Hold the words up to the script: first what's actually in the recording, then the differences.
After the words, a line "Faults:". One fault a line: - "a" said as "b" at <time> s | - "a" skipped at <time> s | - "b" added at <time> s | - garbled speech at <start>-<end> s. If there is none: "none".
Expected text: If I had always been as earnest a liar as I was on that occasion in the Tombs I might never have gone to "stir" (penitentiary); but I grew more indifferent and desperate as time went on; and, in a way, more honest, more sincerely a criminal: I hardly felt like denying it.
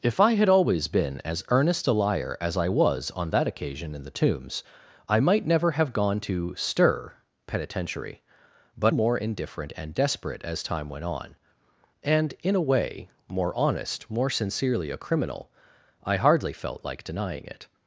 If I had always been as earnest a liar as I was on that occasion in the Tombs I might never have gone to "stir" (penitentiary); but more indifferent and desperate as time went on; and, in a way, more honest, more sincerely a criminal: I hardly felt like denying it.
Faults:
- "I grew" skipped at 8.9 s